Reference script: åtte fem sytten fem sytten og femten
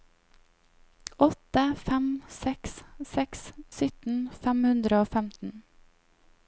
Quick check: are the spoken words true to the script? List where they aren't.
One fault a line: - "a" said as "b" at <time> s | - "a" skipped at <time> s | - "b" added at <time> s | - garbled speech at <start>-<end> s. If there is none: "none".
- "seks seks" added at 2.4 s
- "sytten" said as "hundre" at 4.7 s